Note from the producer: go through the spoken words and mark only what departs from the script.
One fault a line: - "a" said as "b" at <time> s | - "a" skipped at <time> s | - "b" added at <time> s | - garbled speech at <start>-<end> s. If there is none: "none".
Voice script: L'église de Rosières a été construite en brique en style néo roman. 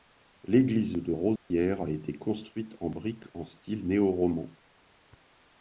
none